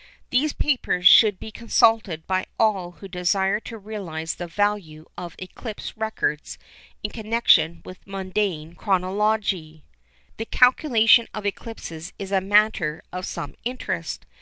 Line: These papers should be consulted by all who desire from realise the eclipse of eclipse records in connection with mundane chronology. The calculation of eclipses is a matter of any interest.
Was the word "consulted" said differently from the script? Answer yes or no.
no